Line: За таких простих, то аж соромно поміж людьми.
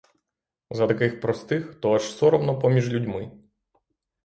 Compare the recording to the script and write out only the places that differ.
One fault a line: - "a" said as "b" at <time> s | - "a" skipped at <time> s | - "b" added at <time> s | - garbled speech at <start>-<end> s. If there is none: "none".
none